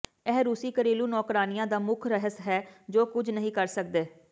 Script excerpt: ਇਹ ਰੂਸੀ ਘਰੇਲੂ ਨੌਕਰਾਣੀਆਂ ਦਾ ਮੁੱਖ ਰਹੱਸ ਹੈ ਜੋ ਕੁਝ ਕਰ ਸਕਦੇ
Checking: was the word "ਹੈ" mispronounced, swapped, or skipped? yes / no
no